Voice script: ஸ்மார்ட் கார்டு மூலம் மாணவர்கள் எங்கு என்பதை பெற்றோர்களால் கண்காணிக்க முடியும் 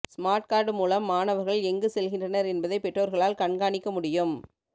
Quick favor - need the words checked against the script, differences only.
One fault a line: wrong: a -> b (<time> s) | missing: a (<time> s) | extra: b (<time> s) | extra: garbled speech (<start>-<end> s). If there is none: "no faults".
extra: செல்கின்றனர் (1.9 s)